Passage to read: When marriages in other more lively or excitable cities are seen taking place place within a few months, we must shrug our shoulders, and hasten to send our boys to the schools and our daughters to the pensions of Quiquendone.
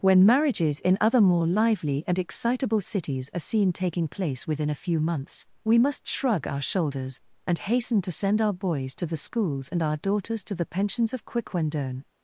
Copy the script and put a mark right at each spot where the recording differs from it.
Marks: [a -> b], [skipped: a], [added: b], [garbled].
When marriages in other more lively [or -> and] excitable cities are seen taking place [skipped: place] within a few months, we must shrug our shoulders, and hasten to send our boys to the schools and our daughters to the pensions of Quiquendone.